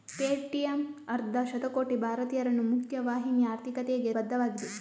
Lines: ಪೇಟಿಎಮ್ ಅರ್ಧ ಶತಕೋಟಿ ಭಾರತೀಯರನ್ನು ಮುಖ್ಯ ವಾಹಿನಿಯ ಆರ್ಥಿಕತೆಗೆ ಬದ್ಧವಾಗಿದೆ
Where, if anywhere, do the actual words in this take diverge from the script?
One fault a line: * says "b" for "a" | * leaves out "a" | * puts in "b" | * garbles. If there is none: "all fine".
all fine